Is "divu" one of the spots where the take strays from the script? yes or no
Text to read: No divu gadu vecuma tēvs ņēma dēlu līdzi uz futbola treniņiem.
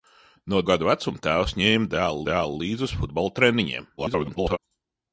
yes